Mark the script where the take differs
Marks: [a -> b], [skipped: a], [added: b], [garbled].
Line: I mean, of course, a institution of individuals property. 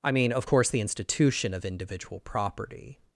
I mean, of course, [a -> the] institution of [individuals -> individual] property.